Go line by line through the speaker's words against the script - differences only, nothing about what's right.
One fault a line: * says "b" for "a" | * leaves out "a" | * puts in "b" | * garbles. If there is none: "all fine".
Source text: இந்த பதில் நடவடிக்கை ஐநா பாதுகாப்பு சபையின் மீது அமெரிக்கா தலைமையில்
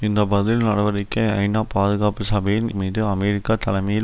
all fine